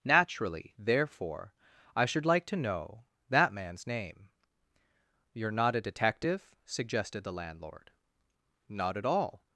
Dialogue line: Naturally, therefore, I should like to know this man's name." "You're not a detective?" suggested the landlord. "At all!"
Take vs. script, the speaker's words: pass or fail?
fail